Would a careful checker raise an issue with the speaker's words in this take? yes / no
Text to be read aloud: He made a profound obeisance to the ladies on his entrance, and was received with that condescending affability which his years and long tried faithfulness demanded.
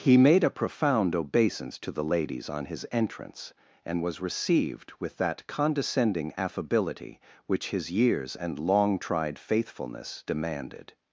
no